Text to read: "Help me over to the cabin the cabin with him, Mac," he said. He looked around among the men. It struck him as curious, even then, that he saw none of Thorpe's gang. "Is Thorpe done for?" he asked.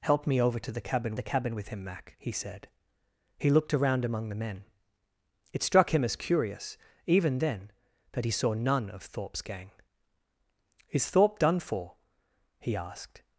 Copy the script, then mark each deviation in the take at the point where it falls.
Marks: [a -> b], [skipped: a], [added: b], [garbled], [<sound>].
"Help me over to the cabin the cabin with him, Mac," he said. He looked around among the men. It struck him as curious, even then, that he saw none of Thorpe's gang. "Is Thorpe done for?" he asked.